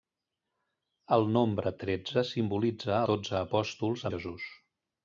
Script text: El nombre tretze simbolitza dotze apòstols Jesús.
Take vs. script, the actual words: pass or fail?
pass